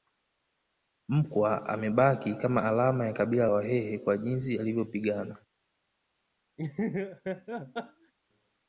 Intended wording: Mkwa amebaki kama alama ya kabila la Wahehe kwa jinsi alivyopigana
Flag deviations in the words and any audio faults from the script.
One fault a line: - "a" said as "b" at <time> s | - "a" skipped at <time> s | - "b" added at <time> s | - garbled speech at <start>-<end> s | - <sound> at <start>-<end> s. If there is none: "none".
- "la" skipped at 3.5 s
- laugh at 6.6-8.1 s